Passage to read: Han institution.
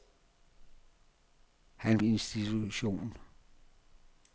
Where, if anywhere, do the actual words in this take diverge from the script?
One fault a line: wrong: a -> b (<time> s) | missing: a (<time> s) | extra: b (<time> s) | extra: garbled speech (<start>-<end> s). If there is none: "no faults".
no faults